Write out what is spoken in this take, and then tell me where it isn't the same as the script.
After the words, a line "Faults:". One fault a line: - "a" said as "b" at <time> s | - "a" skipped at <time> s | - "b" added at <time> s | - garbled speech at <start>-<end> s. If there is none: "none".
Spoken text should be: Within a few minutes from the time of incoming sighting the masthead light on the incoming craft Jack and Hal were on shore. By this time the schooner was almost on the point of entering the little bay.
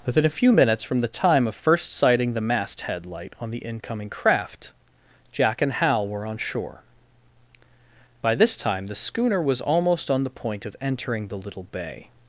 Within a few minutes from the time of first sighting the masthead light on the incoming craft Jack and Hal were on shore. By this time the schooner was almost on the point of entering the little bay.
Faults:
- "incoming" said as "first" at 1.5 s